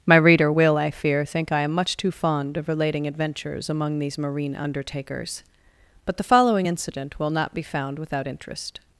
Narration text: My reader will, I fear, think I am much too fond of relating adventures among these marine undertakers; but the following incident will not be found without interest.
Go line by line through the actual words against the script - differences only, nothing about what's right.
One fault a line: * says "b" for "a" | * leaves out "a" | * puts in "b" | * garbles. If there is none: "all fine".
all fine